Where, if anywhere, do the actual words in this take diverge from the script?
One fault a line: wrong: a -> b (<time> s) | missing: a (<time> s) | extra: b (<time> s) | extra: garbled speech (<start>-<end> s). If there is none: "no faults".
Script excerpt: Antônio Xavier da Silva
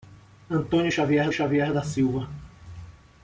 extra: Xavier (1.3 s)